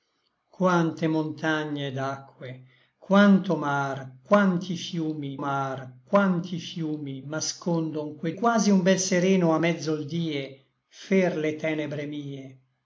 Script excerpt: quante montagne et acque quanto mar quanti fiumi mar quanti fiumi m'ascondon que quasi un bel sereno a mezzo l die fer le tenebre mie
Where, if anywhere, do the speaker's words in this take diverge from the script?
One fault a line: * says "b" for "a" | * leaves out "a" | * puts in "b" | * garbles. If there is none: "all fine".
all fine